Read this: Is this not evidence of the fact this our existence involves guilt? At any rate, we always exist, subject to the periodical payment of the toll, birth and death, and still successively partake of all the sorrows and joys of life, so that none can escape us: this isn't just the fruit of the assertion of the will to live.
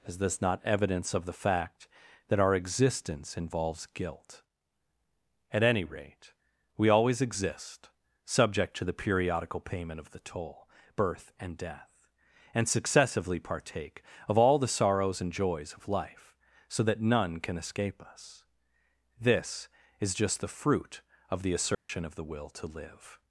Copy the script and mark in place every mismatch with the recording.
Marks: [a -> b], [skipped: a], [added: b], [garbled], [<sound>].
Is this not evidence of the fact [this -> that] our existence involves guilt? At any rate, we always exist, subject to the periodical payment of the toll, birth and death, and [skipped: still] successively partake of all the sorrows and joys of life, so that none can escape us: this [isn't -> is] just the fruit of the assertion [dropout] of the will to live.